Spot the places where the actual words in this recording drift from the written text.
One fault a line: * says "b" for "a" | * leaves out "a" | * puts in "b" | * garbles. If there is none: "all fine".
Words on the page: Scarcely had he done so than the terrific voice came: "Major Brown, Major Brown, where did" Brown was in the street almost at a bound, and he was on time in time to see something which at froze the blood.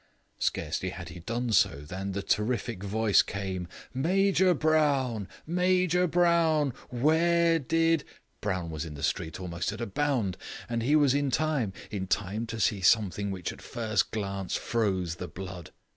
* says "in" for "on"
* puts in "first glance"